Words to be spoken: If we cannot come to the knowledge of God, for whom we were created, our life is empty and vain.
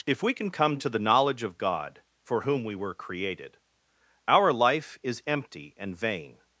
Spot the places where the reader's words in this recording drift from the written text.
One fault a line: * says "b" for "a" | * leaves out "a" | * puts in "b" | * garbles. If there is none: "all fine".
* says "can" for "cannot"